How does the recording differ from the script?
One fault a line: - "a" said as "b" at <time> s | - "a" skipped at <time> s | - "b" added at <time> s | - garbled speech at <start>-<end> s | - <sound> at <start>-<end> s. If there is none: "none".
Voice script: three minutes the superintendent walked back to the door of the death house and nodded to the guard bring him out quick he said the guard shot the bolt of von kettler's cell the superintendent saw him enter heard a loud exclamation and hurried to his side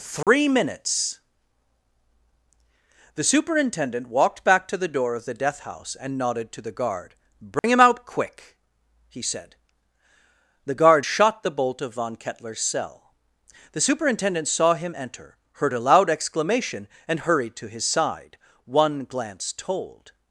- dropout at 0.2-0.3 s
- dropout at 7.6-7.6 s
- "one glance told" added at 18.6 s